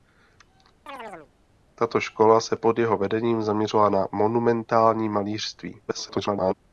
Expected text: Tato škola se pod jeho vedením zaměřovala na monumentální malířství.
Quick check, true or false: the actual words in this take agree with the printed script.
false